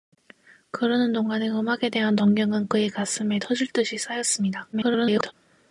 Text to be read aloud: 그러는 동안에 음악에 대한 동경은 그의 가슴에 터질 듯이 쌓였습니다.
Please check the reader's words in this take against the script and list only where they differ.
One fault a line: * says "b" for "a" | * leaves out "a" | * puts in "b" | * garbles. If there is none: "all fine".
* garbles